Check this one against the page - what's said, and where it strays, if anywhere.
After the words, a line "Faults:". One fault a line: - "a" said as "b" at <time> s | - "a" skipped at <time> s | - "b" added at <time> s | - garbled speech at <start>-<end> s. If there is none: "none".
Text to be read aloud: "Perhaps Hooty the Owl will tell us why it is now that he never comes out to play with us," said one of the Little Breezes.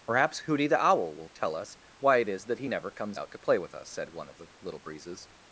"Perhaps Hooty the Owl will tell us why it is that he never comes out to play with us," said one of the Little Breezes.
Faults:
- "now" skipped at 2.5 s